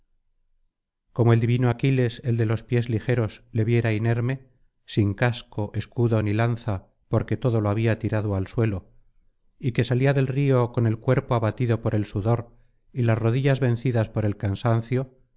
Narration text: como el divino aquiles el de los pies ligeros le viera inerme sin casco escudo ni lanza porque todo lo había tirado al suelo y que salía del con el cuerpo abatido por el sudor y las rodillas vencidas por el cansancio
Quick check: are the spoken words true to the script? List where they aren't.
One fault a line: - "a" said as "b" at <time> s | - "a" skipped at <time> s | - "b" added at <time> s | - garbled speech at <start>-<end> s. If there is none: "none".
- "río" added at 10.3 s